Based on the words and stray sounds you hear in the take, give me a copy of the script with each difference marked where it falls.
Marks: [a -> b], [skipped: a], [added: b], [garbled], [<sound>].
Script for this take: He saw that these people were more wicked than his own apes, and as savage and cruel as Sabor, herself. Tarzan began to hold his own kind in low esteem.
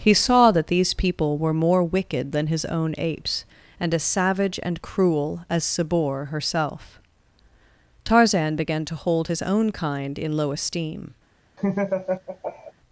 He saw that these people were more wicked than his own apes, and as savage and cruel as Sabor, herself. Tarzan began to hold his own kind in low esteem. [laugh]